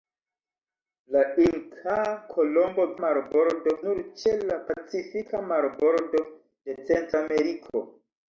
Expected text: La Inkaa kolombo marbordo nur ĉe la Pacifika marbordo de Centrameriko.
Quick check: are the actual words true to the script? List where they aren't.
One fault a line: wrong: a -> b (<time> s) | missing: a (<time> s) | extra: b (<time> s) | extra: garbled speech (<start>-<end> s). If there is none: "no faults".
no faults